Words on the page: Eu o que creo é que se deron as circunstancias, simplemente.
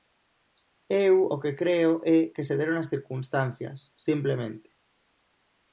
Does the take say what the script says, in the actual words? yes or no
yes